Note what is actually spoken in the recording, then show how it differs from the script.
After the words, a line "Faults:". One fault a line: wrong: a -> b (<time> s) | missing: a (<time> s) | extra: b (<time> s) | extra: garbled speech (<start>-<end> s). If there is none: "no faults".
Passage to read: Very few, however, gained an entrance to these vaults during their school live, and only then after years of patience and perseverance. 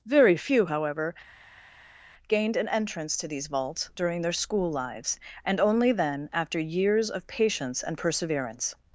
Very few, however, gained an entrance to these vaults during their school lives, and only then after years of patience and perseverance.
Faults:
wrong: live -> lives (4.7 s)